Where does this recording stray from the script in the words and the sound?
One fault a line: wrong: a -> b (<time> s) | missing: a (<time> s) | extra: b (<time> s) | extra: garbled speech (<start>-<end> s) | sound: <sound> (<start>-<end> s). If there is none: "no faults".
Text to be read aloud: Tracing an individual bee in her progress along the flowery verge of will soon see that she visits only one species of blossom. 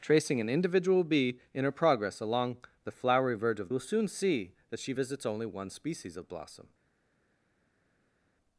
no faults